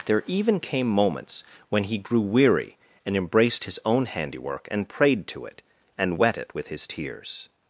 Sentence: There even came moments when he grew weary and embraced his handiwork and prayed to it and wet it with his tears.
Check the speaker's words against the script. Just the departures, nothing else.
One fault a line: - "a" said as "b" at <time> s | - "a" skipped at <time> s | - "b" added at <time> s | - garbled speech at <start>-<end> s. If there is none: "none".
- "own" added at 3.9 s